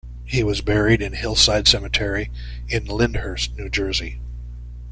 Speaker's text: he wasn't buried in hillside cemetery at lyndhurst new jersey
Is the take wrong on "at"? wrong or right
wrong